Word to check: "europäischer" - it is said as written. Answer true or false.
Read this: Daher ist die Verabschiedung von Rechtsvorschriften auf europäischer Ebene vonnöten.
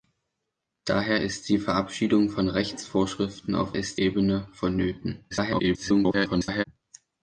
false